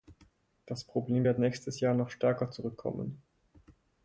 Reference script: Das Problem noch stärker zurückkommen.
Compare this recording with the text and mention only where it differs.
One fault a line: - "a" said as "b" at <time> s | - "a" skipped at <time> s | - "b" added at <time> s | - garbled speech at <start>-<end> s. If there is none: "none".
- "wird nächstes Jahr" added at 1.2 s